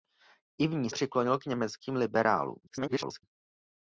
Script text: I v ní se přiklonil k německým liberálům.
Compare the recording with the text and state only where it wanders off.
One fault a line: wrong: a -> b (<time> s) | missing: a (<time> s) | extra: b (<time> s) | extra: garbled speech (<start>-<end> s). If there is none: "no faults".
missing: se (0.9 s)
extra: garbled speech (2.7-3.2 s)